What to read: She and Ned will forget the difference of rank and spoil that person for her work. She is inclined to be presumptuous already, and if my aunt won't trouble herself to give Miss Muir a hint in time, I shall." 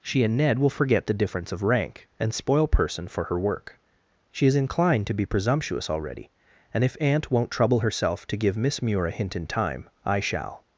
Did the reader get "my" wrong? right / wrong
wrong